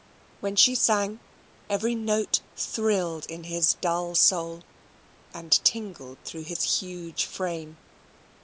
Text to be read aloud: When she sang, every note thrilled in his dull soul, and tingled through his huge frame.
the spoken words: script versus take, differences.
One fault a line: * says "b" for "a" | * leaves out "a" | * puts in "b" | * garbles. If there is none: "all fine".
all fine